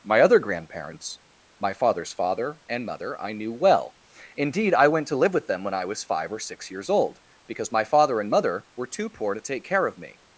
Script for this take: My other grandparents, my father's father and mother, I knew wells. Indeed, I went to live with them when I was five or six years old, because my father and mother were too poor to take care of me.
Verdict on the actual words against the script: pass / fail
fail